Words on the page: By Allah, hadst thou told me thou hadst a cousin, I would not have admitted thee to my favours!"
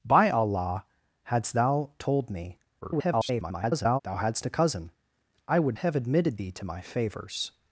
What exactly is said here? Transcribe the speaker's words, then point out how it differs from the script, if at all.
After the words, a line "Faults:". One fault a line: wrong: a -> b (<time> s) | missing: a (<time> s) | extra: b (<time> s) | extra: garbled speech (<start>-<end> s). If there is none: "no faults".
By Allah, hadst thou told me [garbled] thou hadst a cousin, I would have admitted thee to my favours!"
Faults:
extra: garbled speech (2.8-4.0 s)
missing: not (5.8 s)